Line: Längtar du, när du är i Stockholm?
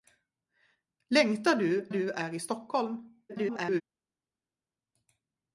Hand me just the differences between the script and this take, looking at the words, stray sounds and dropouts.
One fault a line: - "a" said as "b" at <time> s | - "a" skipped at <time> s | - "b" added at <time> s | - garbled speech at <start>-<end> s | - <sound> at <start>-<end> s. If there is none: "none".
- "när" skipped at 1.9 s
- garbled speech at 3.3-3.8 s